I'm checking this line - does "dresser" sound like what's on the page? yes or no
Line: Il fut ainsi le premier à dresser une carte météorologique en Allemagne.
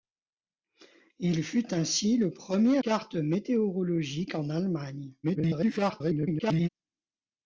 no